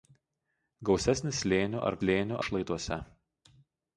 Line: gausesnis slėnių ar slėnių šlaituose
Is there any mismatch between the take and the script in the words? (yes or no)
no